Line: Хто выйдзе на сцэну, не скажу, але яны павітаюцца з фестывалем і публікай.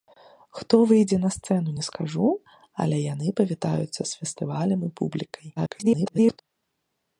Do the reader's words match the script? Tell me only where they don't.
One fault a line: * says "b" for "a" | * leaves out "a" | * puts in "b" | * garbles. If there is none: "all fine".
* garbles